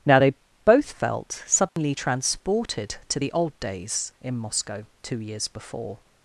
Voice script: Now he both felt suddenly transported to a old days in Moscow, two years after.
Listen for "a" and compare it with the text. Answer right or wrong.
wrong